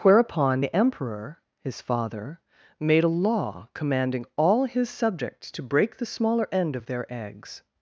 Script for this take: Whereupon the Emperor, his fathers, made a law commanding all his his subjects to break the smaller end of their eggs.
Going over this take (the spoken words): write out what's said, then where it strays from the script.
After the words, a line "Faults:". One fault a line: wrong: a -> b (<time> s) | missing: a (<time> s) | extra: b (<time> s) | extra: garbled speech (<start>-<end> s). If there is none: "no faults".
Whereupon the Emperor, his father, made a law commanding all his subjects to break the smaller end of their eggs.
Faults:
wrong: fathers -> father (1.8 s)
missing: his (4.9 s)